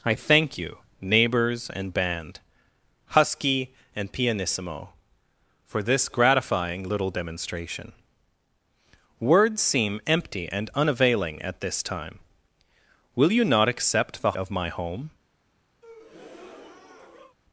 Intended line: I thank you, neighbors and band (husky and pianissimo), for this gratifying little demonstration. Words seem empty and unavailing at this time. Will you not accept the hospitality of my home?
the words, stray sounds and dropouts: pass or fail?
fail